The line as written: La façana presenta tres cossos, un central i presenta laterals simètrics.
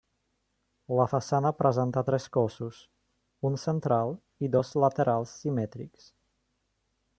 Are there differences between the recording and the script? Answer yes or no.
yes